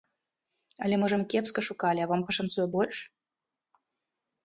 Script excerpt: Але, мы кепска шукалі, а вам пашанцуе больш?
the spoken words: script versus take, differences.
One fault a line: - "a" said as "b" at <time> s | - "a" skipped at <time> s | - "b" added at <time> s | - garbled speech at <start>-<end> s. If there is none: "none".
- "можа" added at 1.0 s